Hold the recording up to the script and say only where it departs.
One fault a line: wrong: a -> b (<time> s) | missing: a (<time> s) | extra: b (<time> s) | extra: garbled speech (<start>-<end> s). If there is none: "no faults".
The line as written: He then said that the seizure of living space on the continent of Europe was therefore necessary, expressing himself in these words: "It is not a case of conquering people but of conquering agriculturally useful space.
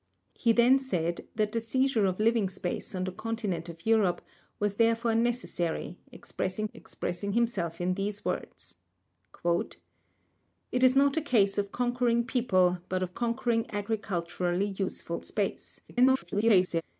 extra: expressing (6.7 s)
extra: garbled speech (15.9-16.8 s)